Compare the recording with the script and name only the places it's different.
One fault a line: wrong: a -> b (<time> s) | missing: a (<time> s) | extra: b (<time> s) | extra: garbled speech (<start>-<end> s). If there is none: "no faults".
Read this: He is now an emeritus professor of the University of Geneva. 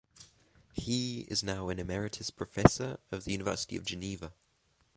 no faults